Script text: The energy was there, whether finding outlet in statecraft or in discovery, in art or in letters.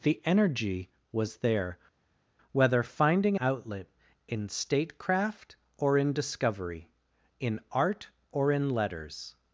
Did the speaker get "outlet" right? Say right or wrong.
right